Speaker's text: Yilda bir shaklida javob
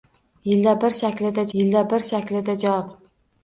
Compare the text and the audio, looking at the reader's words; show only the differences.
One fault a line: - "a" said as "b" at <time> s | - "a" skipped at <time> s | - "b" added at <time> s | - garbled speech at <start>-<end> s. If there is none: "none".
- "yilda bir shaklida" added at 1.6 s